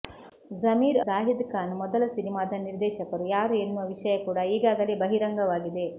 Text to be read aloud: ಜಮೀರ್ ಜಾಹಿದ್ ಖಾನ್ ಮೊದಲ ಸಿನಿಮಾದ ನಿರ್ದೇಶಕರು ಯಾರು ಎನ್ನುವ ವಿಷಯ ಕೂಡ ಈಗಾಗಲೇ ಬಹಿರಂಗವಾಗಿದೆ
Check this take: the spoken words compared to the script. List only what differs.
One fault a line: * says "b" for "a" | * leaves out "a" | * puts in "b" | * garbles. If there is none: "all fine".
all fine